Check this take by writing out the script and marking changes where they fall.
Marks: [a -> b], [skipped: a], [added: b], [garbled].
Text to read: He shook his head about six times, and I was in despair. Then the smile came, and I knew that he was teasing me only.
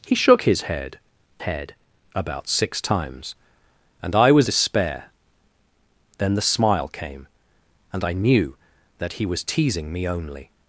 He shook his head [added: head] about six times, and I was [skipped: in] despair. Then the smile came, and I knew that he was teasing me only.